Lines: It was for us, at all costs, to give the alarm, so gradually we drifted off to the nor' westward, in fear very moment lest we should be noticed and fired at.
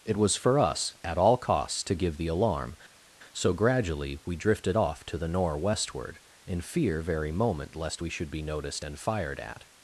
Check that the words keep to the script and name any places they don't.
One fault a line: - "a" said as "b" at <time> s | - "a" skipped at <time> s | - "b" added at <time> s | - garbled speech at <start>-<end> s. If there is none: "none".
none